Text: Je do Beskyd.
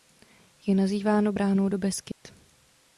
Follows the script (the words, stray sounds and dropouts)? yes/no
no